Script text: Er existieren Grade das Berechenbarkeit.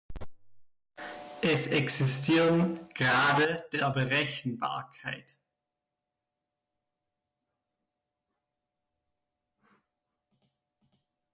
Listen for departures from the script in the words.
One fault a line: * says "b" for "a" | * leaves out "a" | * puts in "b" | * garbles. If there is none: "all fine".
* says "Es" for "Er"
* says "der" for "das"